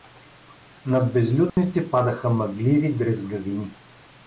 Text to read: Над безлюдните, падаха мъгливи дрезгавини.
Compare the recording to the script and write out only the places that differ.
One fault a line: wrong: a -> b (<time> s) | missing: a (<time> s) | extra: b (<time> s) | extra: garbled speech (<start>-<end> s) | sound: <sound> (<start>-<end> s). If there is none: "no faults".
sound: dropout (1.5-1.6 s)